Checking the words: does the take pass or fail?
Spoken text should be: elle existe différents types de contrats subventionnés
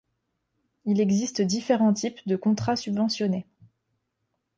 fail